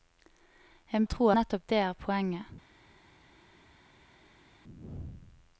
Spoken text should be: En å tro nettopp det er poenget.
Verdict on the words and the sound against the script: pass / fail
pass